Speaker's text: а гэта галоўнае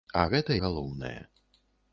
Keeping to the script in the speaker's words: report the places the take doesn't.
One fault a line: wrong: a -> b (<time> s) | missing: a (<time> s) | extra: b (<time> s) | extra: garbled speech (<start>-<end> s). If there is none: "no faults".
no faults